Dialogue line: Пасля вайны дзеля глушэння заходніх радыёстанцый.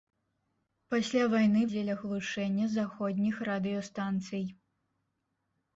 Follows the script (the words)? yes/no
yes